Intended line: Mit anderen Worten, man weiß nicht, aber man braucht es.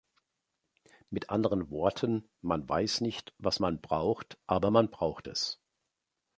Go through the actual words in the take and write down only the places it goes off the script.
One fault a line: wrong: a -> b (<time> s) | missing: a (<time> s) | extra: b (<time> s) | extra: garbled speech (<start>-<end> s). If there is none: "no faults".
extra: was man braucht (3.4 s)